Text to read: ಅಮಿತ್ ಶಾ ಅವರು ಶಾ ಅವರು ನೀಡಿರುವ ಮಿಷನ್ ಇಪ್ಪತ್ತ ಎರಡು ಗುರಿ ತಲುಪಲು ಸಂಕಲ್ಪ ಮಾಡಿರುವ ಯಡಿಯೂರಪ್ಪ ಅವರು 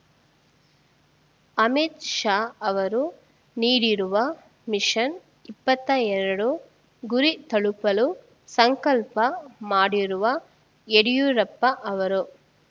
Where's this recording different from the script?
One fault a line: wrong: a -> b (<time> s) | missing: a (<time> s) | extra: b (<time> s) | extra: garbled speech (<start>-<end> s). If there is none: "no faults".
missing: ಶಾ ಅವರು (3.0 s)